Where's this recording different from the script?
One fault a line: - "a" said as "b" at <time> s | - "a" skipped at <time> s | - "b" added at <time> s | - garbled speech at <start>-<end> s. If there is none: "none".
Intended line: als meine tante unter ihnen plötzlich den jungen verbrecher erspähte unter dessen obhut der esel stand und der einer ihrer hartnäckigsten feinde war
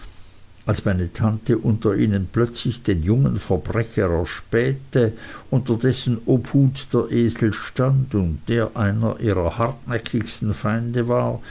none